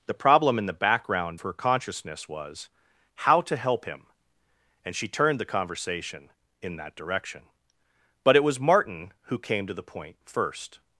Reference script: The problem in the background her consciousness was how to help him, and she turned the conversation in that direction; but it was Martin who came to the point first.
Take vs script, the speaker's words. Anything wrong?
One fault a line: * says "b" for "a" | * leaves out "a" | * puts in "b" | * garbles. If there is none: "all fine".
all fine